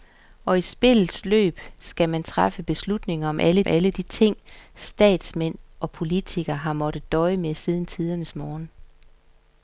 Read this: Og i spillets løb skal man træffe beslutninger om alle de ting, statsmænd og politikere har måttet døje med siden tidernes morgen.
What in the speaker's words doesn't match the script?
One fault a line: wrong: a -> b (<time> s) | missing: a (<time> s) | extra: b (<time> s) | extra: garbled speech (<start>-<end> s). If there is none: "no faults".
extra: alle (3.7 s)